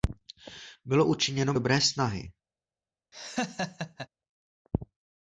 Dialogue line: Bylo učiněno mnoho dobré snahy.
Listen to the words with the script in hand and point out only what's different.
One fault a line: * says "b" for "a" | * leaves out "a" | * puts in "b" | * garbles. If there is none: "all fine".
* leaves out "mnoho"